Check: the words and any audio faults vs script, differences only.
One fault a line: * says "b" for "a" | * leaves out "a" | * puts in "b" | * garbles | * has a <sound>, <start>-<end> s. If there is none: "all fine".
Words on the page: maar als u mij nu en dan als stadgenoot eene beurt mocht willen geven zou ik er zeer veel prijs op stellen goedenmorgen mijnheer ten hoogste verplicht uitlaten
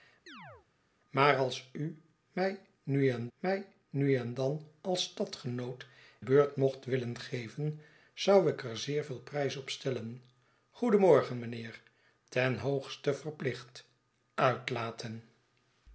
* has a chirp, 0.3-0.7 s
* puts in "mij nu en"
* leaves out "eene"